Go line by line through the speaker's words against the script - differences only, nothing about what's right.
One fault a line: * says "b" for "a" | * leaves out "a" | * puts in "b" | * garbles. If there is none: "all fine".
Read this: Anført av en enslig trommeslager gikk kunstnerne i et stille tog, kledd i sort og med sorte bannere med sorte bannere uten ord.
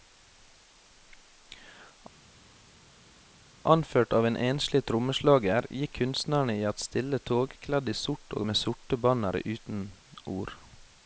* leaves out "med sorte bannere"